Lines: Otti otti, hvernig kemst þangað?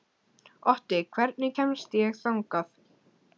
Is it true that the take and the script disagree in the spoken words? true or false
true